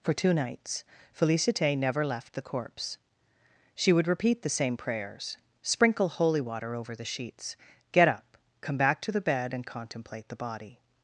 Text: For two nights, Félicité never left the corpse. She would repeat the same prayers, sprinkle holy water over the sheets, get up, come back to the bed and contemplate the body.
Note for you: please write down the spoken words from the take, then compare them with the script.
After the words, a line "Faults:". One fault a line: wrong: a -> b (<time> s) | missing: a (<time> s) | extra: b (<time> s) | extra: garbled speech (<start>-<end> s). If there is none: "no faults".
For two nights, Félicité never left the corpse. She would repeat the same prayers, sprinkle holy water over the sheets, get up, come back to the bed and contemplate the body.
Faults:
no faults